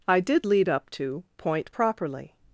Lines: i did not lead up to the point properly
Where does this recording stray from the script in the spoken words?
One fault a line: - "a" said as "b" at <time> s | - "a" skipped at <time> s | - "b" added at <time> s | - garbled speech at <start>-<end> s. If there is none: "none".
- "not" skipped at 0.5 s
- "the" skipped at 1.3 s